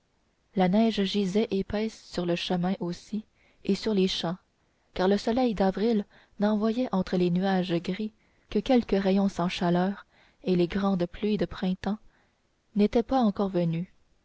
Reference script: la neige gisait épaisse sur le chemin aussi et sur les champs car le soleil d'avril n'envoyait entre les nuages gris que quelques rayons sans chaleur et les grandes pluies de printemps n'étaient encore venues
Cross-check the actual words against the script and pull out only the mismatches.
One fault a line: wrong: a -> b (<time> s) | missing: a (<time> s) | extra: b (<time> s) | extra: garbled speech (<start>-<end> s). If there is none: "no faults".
extra: pas (13.0 s)